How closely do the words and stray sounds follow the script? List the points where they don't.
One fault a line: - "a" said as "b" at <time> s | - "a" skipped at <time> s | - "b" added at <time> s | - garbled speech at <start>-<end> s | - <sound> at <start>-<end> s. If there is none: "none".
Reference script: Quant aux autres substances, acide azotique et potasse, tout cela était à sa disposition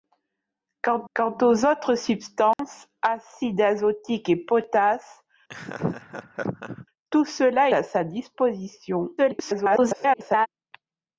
- "quant" added at 1.1 s
- dropout at 2.5-2.6 s
- laugh at 5.5-6.9 s
- "était" skipped at 7.7 s
- garbled speech at 9.2-10.5 s